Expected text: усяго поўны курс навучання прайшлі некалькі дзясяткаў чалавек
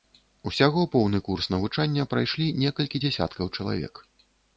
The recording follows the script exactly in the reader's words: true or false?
true